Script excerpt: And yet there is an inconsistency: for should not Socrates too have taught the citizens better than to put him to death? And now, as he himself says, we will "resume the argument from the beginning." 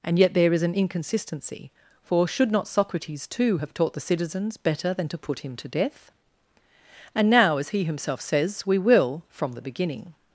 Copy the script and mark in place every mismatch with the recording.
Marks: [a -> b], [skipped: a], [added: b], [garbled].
And yet there is an inconsistency: for should not Socrates too have taught the citizens better than to put him to death? And now, as he himself says, we will [skipped: "resume the argument] from the beginning."